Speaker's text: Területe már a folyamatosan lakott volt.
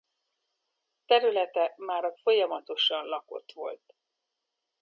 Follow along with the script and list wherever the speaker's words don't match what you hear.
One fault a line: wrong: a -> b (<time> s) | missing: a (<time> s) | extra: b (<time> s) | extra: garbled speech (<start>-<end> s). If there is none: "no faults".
no faults